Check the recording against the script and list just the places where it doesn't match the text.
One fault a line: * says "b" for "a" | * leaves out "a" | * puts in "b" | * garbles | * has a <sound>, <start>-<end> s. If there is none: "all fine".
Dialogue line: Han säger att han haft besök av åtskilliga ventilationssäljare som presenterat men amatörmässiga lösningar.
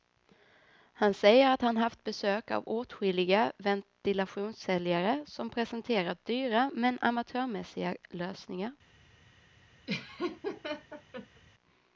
* puts in "dyra"
* has a laugh, 9.9-11.4 s